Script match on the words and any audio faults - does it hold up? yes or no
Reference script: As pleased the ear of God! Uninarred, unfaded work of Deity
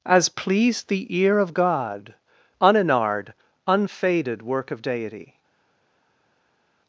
yes